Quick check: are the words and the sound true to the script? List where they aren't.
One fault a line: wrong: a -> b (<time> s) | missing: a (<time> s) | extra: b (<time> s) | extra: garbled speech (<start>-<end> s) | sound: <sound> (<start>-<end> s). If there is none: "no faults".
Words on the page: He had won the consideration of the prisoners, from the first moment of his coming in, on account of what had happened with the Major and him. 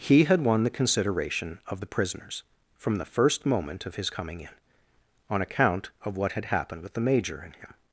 no faults